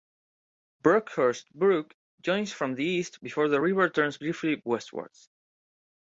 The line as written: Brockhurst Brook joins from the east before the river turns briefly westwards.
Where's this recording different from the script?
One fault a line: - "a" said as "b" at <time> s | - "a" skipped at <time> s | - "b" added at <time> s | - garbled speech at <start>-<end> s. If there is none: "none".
none